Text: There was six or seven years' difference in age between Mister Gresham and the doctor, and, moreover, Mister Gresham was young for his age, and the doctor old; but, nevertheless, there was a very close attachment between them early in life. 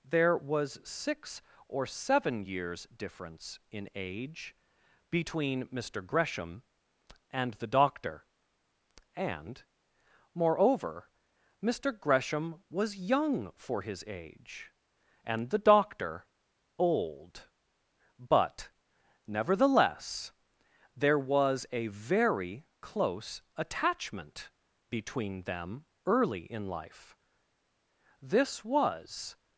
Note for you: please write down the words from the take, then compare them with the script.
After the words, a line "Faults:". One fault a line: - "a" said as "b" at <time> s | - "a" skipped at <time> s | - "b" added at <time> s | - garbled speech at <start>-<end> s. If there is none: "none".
There was six or seven years' difference in age between Mister Gresham and the doctor, and, moreover, Mister Gresham was young for his age, and the doctor old; but, nevertheless, there was a very close attachment between them early in life. This was
Faults:
- "This was" added at 28.2 s